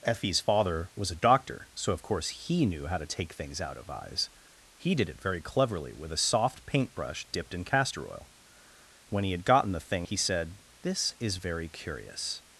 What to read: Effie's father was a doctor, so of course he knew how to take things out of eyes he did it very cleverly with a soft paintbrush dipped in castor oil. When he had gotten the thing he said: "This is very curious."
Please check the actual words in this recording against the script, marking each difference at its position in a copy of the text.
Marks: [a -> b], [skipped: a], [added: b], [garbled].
Effie's father was a doctor, so of course he knew how to take things out of eyes he did it very cleverly with a soft paintbrush dipped in castor oil. When he had gotten the thing he said: "This is very curious."